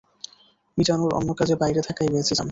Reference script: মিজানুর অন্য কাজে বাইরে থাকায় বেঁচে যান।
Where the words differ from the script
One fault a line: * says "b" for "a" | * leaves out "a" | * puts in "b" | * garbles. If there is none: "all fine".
all fine